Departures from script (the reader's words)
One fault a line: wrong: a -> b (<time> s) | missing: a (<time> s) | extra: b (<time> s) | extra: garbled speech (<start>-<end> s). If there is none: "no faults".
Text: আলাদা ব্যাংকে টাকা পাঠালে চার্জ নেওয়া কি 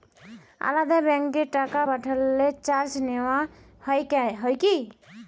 extra: হয় (4.4 s)